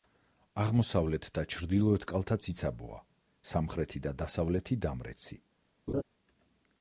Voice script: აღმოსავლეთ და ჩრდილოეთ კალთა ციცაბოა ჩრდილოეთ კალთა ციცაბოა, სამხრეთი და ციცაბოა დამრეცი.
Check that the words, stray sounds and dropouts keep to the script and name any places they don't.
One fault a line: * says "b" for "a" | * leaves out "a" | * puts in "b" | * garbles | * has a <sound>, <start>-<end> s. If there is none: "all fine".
* leaves out "ჩრდილოეთ კალთა ციცაბოა"
* says "დასავლეთი" for "ციცაბოა"
* has a laugh, 5.9-6.0 s